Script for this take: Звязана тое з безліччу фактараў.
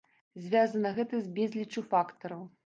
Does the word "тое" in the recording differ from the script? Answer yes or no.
yes